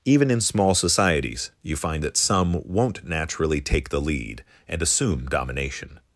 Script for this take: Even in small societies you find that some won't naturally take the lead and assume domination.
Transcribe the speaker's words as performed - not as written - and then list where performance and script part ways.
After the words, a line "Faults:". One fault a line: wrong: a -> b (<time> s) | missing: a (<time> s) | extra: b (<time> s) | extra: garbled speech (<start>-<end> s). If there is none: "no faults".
Even in small societies you find that some won't naturally take the lead and assume domination.
Faults:
no faults